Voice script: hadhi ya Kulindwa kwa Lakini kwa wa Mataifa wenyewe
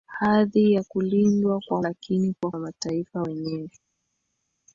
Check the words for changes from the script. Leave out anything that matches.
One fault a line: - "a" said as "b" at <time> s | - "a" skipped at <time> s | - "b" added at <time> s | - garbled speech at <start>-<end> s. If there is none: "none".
none